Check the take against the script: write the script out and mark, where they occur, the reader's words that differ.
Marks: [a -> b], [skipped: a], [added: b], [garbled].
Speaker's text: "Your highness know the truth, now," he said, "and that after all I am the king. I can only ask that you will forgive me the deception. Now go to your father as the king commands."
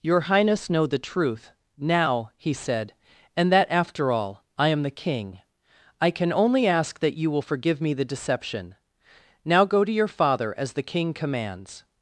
"Your highness know the truth, now," he said, "and that after all I am the king. I can only ask that you will forgive me the deception. Now go to your father as the king commands."